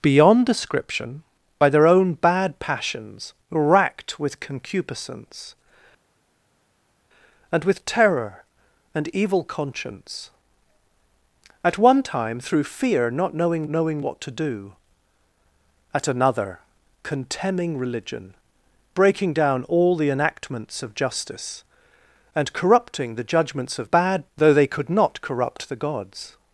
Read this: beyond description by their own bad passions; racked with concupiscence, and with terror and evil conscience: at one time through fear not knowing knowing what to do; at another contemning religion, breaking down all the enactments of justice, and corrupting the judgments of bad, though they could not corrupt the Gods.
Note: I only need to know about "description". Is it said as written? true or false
true